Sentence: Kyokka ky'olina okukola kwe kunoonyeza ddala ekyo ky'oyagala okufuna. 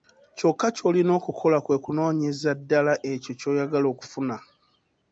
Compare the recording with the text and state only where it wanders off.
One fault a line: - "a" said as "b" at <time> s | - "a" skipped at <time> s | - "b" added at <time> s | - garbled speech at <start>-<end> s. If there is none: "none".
none